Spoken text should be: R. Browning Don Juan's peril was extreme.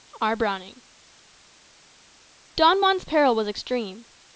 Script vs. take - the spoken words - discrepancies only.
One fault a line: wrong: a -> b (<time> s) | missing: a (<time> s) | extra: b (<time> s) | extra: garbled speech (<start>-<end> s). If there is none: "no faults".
no faults